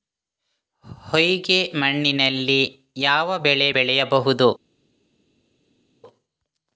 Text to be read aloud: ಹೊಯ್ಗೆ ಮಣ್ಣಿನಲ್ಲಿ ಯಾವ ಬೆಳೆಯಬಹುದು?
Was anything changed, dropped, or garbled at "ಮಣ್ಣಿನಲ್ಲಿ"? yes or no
no